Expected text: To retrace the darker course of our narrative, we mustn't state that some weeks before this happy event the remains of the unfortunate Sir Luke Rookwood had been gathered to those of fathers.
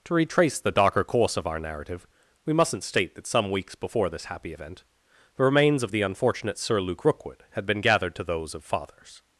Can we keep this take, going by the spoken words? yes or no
yes